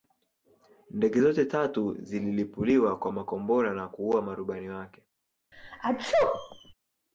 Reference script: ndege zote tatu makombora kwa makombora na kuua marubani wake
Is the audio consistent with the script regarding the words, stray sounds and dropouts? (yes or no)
no